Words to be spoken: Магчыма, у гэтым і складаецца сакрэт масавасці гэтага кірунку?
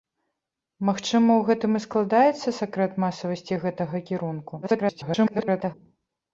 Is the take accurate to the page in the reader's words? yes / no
no